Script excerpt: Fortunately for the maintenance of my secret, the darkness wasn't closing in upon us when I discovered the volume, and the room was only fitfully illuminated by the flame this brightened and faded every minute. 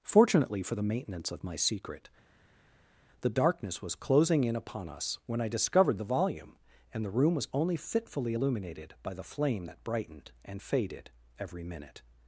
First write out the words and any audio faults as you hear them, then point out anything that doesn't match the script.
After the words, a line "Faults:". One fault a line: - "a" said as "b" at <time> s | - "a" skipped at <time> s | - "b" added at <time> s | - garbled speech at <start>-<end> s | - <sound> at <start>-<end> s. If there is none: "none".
Fortunately for the maintenance of my secret, the darkness was closing in upon us when I discovered the volume, and the room was only fitfully illuminated by the flame that brightened and faded every minute.
Faults:
- "wasn't" said as "was" at 3.8 s
- "this" said as "that" at 9.6 s